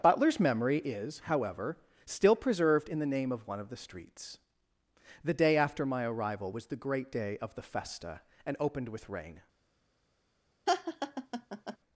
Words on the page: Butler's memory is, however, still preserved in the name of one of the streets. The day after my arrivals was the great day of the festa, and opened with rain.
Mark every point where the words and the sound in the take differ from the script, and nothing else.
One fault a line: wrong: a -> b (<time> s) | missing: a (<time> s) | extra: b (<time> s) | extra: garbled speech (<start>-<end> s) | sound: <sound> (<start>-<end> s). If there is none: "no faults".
wrong: arrivals -> arrival (6.0 s)
sound: laugh (10.7-11.8 s)